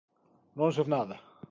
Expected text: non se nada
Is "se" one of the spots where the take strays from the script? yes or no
no